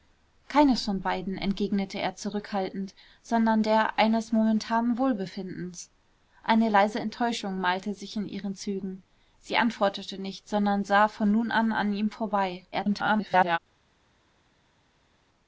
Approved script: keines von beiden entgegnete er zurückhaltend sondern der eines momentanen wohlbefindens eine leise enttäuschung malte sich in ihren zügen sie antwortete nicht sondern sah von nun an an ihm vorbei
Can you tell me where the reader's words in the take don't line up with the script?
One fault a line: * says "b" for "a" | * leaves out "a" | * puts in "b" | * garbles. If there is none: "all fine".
* garbles